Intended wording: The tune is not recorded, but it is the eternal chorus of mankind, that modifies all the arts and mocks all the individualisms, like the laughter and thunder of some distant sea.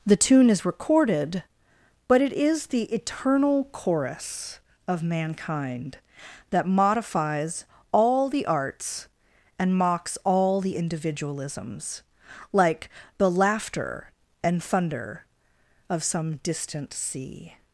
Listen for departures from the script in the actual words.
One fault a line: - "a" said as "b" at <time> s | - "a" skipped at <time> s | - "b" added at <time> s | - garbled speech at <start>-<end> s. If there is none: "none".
- "not" skipped at 0.7 s